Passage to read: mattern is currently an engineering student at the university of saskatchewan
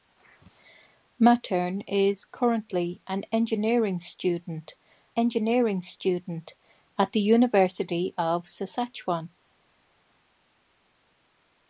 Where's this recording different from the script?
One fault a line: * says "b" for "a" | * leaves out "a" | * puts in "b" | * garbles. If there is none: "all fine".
* puts in "engineering student"